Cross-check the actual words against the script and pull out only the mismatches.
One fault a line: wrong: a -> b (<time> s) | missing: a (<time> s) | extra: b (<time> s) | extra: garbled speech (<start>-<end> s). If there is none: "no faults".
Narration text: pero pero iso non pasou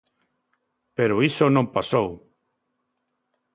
missing: pero (1.1 s)